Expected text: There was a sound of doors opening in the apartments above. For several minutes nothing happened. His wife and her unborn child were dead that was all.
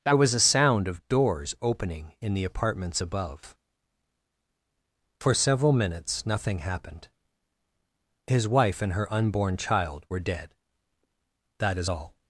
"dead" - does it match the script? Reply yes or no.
yes